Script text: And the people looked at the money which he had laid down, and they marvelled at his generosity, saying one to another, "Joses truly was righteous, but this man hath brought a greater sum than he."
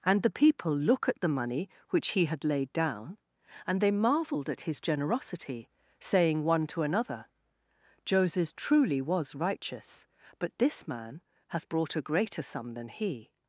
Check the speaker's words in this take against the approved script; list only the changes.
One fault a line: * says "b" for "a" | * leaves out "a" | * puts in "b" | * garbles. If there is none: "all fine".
* says "look" for "looked"